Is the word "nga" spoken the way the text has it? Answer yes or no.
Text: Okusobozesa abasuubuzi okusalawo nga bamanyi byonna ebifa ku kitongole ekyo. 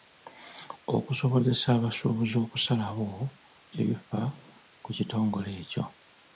no